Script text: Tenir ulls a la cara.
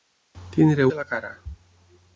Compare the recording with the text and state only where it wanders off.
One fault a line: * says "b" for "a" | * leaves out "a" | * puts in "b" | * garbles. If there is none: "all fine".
* leaves out "ulls"